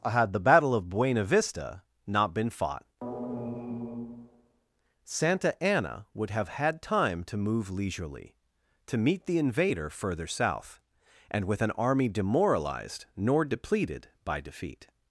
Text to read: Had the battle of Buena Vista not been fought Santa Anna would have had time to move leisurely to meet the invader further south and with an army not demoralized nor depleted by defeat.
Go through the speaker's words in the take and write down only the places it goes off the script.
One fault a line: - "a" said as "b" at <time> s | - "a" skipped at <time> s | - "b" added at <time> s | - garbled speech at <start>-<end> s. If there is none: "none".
- "not" skipped at 12.1 s